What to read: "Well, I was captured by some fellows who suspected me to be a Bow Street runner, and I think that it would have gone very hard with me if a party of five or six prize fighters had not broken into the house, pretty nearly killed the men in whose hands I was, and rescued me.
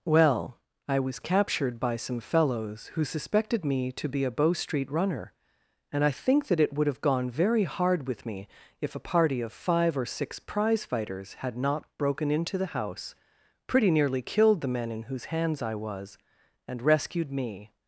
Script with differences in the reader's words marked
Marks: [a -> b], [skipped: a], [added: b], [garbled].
"Well, I was captured by some fellows who suspected me to be a Bow Street runner, and I think that it would have gone very hard with me if a party of five or six prize fighters had not broken into the house, pretty nearly killed the men in whose hands I was, and rescued me.